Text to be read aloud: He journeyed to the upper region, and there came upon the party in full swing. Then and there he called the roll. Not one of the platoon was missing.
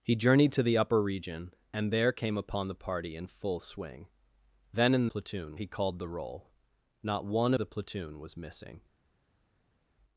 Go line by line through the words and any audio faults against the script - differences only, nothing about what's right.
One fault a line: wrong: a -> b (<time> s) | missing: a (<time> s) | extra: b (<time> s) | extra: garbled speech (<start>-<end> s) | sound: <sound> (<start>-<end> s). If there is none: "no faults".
wrong: there -> platoon (5.0 s)
missing: of (7.5 s)